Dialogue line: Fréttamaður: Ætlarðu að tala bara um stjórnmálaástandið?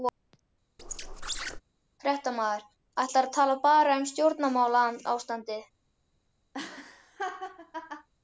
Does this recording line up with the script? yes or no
yes